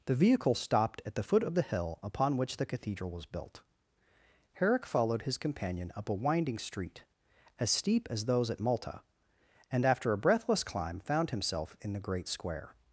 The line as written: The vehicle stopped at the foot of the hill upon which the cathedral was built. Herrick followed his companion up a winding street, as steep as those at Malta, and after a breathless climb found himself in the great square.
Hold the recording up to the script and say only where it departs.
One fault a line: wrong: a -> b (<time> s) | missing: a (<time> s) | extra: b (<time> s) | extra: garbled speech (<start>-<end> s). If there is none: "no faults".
no faults